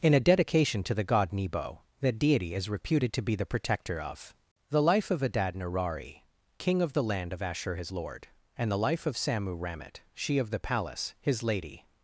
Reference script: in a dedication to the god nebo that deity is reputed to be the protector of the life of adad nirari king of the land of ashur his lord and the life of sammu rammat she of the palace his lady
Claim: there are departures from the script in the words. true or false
false